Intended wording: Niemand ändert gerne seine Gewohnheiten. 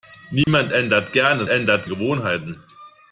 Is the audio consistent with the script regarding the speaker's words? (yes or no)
no